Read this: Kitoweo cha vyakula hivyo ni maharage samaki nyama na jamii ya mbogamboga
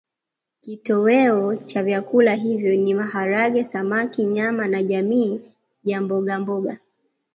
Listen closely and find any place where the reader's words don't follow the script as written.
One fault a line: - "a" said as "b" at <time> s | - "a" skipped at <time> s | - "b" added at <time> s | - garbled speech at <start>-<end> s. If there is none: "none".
none